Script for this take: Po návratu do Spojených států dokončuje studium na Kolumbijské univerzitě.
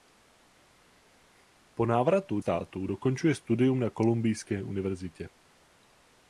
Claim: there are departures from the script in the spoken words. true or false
true